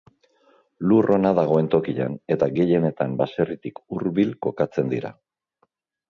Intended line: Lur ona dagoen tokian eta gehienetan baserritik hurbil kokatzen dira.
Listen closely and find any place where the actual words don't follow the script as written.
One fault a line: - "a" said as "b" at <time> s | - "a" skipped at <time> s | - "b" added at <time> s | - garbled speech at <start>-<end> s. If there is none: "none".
none